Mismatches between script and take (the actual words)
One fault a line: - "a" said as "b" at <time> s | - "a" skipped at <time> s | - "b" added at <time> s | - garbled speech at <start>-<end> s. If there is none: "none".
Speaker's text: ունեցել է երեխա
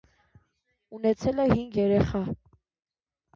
- "հինգ" added at 1.5 s